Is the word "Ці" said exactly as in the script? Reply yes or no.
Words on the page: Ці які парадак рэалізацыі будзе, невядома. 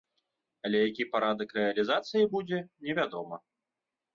no